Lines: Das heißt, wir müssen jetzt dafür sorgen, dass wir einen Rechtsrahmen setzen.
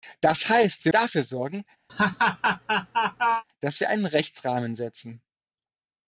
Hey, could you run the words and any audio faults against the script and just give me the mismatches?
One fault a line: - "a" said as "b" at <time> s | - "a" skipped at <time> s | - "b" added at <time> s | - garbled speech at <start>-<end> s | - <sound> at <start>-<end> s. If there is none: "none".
- "müssen jetzt" skipped at 0.9 s
- laugh at 1.9-3.4 s